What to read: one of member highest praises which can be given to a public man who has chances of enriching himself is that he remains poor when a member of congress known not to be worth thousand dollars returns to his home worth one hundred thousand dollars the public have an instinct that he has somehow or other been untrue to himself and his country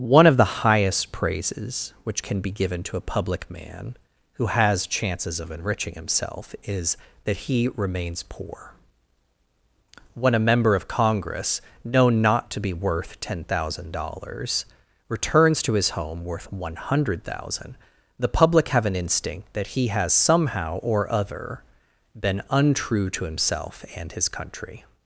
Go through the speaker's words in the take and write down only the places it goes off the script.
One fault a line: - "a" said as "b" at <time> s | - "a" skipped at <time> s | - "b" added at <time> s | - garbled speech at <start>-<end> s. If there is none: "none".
- "member" said as "the" at 0.3 s
- "ten" added at 13.2 s